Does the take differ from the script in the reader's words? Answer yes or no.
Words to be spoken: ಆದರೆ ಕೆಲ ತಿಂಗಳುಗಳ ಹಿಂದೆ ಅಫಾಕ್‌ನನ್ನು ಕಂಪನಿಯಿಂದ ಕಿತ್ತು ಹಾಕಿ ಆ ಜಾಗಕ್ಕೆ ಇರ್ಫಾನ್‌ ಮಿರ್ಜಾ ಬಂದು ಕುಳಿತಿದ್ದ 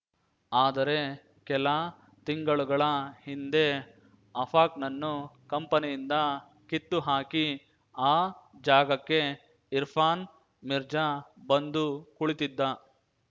no